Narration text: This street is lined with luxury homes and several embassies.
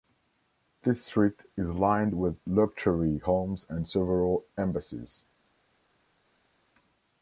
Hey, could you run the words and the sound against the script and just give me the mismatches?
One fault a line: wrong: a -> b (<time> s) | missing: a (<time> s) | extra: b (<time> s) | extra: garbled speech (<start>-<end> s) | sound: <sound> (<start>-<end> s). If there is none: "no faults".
no faults